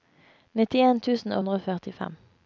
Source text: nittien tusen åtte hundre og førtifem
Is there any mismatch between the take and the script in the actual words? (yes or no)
yes